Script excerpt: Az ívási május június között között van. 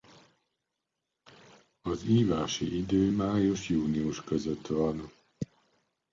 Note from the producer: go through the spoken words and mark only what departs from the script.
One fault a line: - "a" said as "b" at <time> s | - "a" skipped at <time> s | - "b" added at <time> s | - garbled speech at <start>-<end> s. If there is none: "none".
- "idő" added at 2.8 s
- "között" skipped at 4.7 s